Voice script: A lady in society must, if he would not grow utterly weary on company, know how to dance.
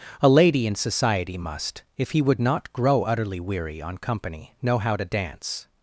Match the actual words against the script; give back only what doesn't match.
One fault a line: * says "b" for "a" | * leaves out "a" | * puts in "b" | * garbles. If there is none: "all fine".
all fine